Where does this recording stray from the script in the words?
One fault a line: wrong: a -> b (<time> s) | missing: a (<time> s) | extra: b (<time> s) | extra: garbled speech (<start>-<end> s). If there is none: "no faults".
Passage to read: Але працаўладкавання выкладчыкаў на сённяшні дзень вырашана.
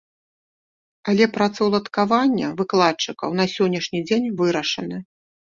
no faults